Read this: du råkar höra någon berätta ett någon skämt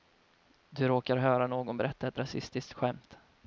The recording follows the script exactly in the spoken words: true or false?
false